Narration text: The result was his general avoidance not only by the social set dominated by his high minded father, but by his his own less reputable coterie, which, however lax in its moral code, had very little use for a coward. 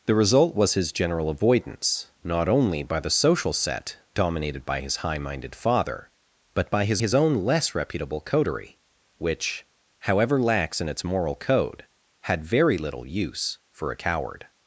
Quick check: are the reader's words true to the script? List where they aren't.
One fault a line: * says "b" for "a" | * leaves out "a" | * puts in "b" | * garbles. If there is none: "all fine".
all fine